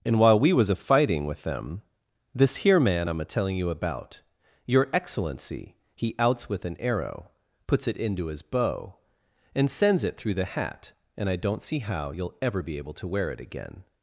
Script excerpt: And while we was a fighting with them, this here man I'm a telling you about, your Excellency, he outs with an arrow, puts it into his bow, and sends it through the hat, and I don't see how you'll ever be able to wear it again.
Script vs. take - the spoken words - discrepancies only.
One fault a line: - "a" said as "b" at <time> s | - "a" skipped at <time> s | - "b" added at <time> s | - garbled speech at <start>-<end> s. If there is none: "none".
none